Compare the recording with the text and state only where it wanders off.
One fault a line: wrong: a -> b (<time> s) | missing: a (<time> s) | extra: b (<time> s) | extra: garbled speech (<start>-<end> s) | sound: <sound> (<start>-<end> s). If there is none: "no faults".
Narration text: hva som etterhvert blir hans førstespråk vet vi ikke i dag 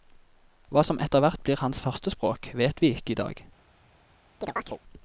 sound: chirp (4.4-4.8 s)